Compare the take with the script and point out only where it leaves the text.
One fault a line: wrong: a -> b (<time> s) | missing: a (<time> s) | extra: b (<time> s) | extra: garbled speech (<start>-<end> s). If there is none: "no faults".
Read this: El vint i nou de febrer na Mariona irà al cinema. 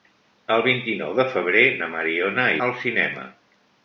missing: irà (2.5 s)